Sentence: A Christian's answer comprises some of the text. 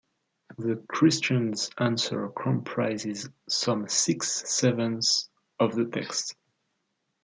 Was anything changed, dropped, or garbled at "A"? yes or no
yes